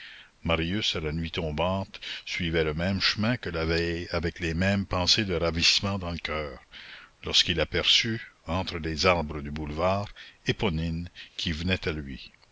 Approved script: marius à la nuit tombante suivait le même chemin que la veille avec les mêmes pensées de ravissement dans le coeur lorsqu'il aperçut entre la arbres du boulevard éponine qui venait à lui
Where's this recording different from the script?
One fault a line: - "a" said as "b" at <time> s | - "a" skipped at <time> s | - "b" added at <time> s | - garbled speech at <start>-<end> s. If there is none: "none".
- "la" said as "les" at 8.8 s